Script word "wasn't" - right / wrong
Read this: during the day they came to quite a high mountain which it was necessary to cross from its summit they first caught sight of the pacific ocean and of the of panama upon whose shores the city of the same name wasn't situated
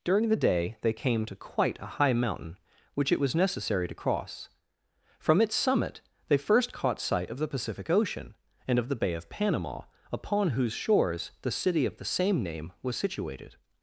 wrong